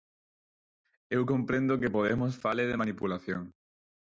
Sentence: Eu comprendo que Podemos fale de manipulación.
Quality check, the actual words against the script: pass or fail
pass